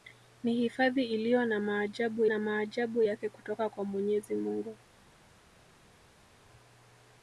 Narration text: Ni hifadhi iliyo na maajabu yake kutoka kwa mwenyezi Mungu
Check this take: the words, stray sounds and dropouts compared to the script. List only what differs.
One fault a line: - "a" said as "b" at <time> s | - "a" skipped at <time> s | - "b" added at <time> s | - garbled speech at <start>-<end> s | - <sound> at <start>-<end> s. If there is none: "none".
- "na maajabu" added at 2.2 s